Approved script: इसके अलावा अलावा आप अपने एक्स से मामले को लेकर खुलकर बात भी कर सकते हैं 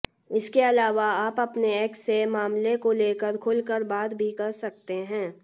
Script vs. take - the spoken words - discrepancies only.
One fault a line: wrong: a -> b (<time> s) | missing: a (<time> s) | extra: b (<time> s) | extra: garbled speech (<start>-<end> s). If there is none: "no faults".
missing: अलावा (1.1 s)